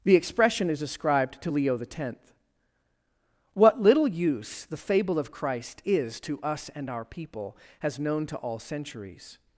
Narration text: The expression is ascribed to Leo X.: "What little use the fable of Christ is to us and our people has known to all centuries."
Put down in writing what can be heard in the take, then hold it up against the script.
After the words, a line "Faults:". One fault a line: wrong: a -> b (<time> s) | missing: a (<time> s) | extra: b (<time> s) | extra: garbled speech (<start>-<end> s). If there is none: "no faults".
The expression is ascribed to Leo X.: "What little use the fable of Christ is to us and our people has known to all centuries."
Faults:
no faults